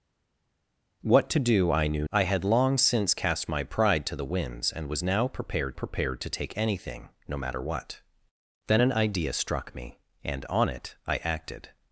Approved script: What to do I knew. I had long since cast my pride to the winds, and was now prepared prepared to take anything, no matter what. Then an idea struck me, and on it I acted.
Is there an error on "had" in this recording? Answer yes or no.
no